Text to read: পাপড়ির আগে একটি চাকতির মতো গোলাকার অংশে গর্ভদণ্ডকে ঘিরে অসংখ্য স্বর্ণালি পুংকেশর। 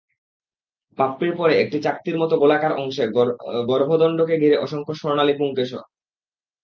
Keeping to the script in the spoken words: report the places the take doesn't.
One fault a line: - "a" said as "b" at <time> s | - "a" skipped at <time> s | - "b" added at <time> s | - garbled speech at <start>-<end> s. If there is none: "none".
- "আগে" said as "পরে" at 1.4 s